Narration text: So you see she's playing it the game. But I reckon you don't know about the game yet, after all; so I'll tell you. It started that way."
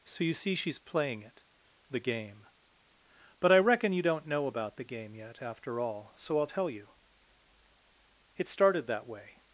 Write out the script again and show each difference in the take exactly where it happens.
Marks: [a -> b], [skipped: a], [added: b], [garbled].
So you see she's playing it the game. But I reckon you don't know about the game yet, after all; so I'll tell you. It started that way."